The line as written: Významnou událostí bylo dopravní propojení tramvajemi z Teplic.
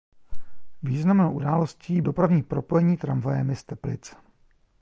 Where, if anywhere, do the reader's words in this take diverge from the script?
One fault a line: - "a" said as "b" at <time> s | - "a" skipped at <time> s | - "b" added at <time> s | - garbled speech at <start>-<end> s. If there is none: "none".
- "bylo" skipped at 2.0 s